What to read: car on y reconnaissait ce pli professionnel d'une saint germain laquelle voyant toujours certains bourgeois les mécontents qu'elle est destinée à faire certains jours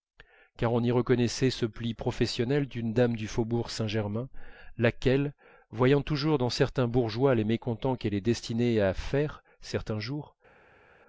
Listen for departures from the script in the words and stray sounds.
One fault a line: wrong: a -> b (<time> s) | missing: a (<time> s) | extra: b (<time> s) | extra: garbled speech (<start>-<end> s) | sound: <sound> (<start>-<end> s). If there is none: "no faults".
extra: dame du faubourg (2.9 s)
extra: dans (6.4 s)